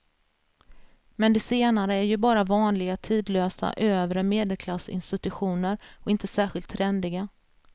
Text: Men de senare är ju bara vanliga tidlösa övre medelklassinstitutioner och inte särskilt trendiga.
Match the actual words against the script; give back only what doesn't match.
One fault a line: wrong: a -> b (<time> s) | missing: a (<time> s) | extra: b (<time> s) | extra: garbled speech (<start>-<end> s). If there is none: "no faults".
no faults